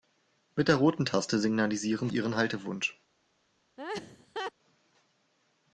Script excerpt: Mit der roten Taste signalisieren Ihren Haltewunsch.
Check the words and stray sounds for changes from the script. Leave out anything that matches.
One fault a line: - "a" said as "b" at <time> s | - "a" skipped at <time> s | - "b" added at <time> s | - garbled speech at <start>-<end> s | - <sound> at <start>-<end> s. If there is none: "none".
- laugh at 3.8-4.5 s